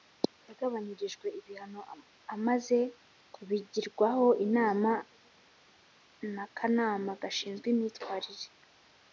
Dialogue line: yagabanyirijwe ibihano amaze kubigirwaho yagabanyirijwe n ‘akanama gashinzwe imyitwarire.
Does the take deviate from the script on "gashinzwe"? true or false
false